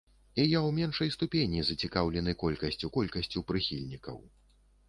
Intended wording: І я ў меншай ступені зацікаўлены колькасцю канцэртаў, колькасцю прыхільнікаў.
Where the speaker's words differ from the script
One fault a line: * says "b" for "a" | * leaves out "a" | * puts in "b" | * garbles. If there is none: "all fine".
* leaves out "канцэртаў"